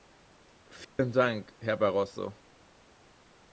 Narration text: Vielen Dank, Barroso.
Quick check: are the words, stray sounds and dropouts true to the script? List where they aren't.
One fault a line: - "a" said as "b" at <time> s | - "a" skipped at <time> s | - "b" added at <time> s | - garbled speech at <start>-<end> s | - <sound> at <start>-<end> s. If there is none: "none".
- dropout at 0.8-1.0 s
- "Herr" added at 1.6 s